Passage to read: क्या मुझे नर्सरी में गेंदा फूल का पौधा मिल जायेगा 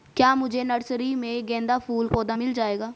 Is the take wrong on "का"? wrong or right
wrong